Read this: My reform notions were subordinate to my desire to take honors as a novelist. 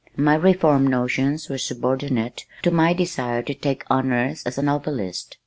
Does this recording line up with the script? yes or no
yes